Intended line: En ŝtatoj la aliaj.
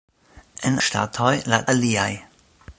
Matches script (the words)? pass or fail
pass